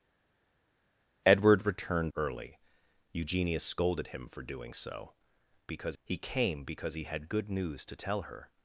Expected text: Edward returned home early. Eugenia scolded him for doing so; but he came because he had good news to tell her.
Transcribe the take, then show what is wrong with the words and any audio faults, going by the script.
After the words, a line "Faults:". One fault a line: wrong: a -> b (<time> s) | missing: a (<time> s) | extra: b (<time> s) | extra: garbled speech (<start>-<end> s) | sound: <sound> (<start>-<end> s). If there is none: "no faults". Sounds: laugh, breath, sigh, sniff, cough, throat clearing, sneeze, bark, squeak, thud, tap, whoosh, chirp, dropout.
Edward returned early. Eugenia scolded him for doing so; because he came because he had good news to tell her.
Faults:
missing: home (2.1 s)
wrong: but -> because (5.7 s)